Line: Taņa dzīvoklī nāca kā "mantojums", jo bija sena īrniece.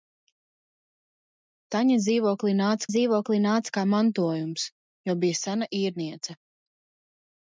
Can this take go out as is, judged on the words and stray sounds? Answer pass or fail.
fail